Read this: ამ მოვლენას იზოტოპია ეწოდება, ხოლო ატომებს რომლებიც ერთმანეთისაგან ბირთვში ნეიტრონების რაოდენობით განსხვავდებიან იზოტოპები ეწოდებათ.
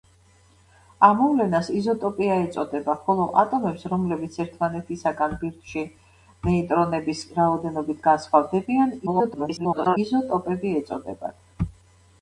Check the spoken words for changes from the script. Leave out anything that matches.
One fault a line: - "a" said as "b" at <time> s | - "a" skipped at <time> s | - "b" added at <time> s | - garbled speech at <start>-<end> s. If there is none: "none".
- garbled speech at 9.1-10.0 s